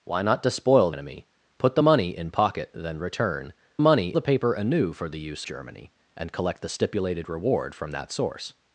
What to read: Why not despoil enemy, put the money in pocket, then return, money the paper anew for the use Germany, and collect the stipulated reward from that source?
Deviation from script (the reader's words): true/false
false